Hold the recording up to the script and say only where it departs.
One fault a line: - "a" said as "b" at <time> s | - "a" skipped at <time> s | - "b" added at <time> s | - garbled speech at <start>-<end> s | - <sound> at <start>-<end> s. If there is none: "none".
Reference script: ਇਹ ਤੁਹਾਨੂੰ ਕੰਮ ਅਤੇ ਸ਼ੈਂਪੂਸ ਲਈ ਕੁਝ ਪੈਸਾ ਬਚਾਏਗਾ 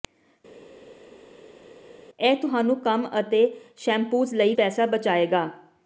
- "ਕੁਝ" skipped at 4.5 s